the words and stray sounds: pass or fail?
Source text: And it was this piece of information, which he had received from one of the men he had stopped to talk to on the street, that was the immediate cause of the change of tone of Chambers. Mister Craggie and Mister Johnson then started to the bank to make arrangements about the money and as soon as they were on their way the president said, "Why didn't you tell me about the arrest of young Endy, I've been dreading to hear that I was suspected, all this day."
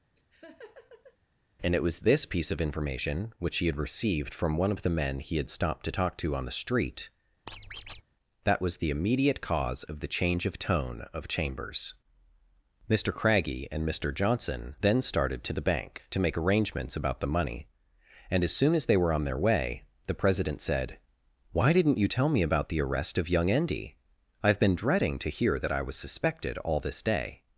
fail